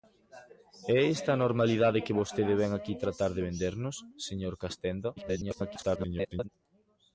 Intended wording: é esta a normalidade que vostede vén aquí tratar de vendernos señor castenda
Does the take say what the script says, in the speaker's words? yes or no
no